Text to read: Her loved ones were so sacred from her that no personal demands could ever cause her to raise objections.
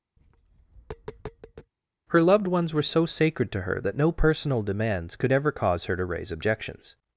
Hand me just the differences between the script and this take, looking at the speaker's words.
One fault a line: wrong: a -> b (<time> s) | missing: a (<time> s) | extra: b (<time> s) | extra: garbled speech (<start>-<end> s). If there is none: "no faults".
wrong: from -> to (3.5 s)